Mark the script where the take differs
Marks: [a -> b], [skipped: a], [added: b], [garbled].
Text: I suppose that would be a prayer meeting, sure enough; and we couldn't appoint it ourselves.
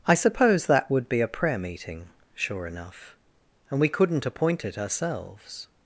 I suppose that would be a prayer meeting, sure enough; and we couldn't appoint it ourselves.